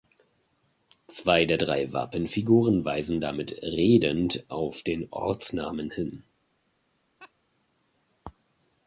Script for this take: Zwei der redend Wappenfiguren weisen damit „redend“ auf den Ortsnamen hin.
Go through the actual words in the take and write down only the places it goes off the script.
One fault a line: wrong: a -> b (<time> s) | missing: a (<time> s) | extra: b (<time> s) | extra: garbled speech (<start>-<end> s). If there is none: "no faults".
wrong: redend -> drei (1.6 s)